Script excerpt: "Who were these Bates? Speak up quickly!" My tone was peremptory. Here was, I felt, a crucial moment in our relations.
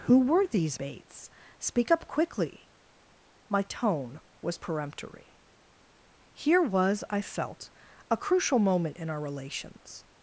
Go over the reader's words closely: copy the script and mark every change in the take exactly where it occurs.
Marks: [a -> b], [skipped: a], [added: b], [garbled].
"Who were these Bates? Speak up quickly!" My tone was peremptory. Here was, I felt, a crucial moment in our relations.